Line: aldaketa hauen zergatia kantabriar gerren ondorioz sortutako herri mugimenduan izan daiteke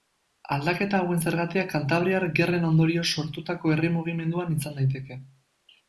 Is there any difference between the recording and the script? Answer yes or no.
no